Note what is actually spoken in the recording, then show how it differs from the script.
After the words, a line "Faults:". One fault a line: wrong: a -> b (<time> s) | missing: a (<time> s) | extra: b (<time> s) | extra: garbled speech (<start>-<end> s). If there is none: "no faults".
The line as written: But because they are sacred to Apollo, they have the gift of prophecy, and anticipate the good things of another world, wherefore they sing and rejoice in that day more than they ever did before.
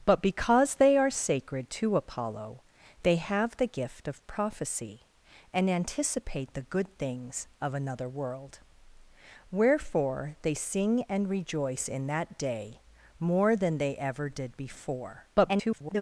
But because they are sacred to Apollo, they have the gift of prophecy, and anticipate the good things of another world, wherefore they sing and rejoice in that day more than they ever did before. [garbled]
Faults:
extra: garbled speech (15.3-16.0 s)